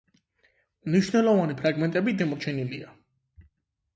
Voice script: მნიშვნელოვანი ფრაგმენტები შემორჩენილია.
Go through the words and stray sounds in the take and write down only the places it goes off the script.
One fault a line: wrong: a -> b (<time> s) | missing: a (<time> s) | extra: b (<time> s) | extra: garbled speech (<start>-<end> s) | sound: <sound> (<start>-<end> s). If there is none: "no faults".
no faults